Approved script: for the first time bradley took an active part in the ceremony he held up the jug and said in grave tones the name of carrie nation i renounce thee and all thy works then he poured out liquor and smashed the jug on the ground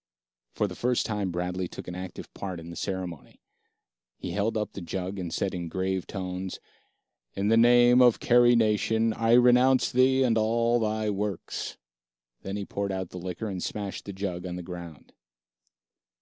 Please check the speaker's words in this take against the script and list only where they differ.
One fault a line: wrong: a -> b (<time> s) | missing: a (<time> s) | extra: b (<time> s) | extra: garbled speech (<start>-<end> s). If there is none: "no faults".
extra: in (7.3 s)
extra: the (13.1 s)